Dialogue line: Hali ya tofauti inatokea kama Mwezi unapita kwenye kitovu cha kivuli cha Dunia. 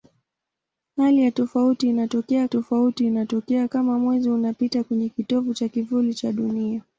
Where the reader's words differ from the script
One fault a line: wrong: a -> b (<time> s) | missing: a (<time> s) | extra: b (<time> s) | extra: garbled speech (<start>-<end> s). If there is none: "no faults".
extra: tofauti inatokea (2.5 s)